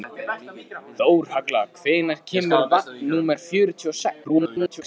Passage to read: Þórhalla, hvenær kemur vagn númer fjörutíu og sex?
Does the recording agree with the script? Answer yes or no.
no